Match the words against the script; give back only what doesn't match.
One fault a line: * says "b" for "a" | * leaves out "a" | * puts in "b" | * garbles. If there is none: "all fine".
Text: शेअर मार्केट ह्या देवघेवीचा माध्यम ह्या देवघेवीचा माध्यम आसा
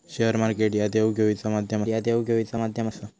all fine